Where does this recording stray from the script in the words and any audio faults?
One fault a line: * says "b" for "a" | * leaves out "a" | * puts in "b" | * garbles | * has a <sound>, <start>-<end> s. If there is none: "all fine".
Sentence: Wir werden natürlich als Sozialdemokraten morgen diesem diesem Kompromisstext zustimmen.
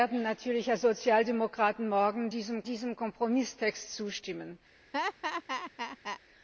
* has a laugh, 4.9-6.2 s